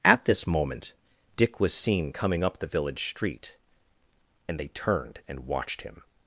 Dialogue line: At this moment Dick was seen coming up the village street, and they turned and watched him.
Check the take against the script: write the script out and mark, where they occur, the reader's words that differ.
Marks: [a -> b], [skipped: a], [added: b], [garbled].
At this moment Dick was seen coming up the village street, and they turned and watched him.